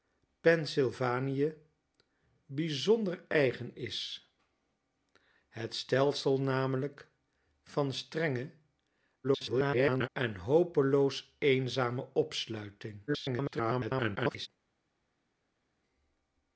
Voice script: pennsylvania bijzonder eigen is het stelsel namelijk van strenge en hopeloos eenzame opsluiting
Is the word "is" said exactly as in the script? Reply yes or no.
yes